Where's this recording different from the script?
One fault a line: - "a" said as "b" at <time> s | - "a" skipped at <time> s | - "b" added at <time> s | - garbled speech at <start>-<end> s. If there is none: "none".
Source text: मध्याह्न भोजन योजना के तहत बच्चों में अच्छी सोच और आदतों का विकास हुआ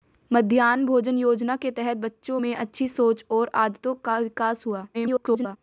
- garbled speech at 4.9-5.6 s